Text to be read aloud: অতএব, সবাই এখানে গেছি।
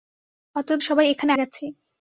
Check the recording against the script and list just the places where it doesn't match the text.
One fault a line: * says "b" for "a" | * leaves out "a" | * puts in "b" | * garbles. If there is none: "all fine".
all fine